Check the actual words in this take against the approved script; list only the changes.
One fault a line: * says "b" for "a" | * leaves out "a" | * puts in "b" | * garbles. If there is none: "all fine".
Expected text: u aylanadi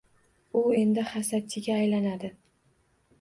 * puts in "endi hasadchiga"